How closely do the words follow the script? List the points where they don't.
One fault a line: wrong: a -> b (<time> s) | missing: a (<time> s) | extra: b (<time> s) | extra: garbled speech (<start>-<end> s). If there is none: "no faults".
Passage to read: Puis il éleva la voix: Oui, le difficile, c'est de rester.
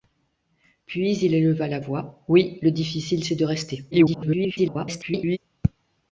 extra: garbled speech (3.9-5.4 s)